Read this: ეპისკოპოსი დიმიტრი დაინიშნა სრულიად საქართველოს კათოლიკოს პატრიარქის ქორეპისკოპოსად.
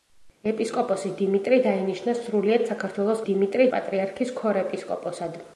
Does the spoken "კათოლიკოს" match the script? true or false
false